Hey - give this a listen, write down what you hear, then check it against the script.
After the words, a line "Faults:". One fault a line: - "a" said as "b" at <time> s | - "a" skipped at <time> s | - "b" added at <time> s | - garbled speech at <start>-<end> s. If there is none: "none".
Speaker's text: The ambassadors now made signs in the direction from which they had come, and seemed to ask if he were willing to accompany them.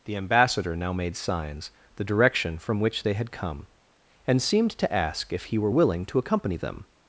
The ambassador now made signs the direction from which they had come, and seemed to ask if he were willing to accompany them.
Faults:
- "ambassadors" said as "ambassador" at 0.1 s
- "in" skipped at 1.7 s